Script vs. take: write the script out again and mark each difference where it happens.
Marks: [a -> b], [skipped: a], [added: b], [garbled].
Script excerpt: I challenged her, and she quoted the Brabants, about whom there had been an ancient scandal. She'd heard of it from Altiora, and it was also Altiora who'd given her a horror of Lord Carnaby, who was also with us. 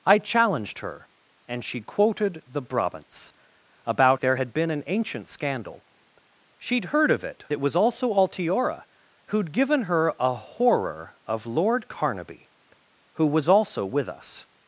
I challenged her, and she quoted the Brabants, about [skipped: whom] there had been an ancient scandal. She'd heard of it [skipped: from Altiora, and] it was also Altiora who'd given her a horror of Lord Carnaby, who was also with us.